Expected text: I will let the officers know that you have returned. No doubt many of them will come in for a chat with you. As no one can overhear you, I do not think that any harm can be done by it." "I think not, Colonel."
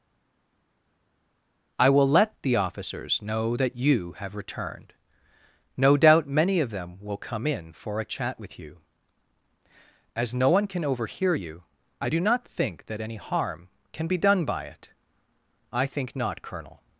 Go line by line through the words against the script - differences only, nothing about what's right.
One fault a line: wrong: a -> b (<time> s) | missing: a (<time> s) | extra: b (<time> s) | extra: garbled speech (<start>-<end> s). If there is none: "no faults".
no faults